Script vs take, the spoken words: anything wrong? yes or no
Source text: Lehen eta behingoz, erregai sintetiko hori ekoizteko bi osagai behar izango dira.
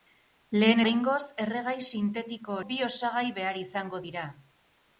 yes